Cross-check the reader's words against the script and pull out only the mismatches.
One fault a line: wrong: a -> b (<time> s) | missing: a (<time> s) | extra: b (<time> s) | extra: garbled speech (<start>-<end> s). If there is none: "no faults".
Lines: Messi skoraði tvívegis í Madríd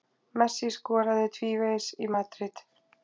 no faults